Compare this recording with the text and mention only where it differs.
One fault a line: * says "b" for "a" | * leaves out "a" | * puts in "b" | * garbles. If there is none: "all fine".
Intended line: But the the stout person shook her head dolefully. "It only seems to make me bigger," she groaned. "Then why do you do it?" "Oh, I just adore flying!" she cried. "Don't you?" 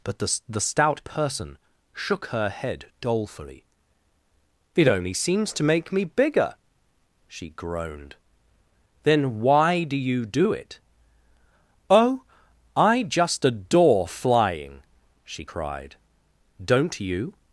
all fine